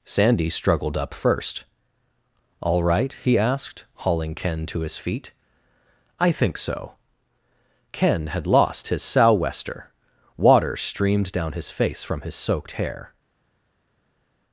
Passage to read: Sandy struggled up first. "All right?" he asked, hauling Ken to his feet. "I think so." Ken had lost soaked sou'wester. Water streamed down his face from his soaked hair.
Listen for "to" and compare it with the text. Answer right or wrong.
right